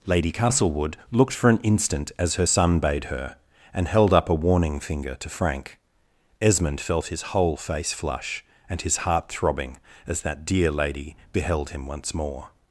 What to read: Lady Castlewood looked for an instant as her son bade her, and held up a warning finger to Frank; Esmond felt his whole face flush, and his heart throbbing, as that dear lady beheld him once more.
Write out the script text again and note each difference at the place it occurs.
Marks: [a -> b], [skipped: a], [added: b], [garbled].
Lady Castlewood looked for an instant as her son bade her, and held up a warning finger to Frank; Esmond felt his whole face flush, and his heart throbbing, as that dear lady beheld him once more.